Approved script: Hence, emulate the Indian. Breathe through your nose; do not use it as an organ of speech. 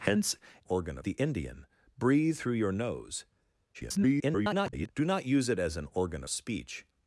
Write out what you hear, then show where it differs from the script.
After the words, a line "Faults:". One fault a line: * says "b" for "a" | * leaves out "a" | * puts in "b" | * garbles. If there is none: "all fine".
Hence, organ the Indian. Breathe through your nose; [garbled] do not use it as an organ speech.
Faults:
* says "organ" for "emulate"
* garbles
* leaves out "of"